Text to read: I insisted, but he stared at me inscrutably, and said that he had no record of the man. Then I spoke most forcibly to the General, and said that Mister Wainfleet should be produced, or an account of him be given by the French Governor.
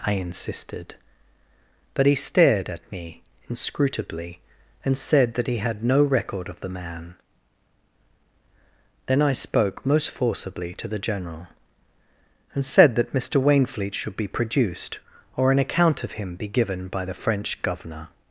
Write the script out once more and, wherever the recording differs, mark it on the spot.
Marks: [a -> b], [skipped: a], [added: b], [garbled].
I insisted, but he stared at me inscrutably, and said that he had no record of the man. Then I spoke most forcibly to the General, and said that Mister Wainfleet should be produced, or an account of him be given by the French Governor.